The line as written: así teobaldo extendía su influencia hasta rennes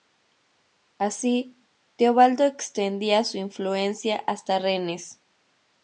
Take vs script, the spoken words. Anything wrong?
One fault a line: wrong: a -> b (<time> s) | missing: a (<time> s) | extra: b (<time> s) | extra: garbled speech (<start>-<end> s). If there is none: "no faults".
no faults